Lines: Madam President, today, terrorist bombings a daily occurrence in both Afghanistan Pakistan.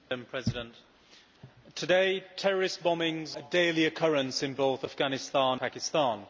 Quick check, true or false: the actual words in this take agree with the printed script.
true